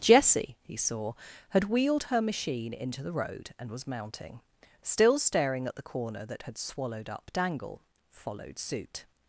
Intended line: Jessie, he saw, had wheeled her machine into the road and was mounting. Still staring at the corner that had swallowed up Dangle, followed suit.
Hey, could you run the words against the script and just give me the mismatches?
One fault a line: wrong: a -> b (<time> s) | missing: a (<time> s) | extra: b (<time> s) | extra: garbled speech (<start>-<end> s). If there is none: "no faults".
no faults